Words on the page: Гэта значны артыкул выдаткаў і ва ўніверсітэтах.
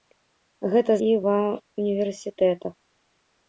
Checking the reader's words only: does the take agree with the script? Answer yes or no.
no